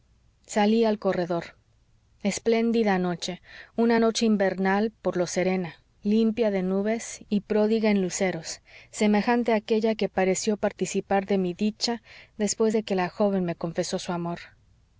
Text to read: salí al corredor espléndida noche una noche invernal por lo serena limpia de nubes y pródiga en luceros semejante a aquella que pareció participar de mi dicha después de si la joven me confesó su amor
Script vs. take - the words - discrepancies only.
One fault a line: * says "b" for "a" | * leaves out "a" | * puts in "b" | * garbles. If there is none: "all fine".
* says "que" for "si"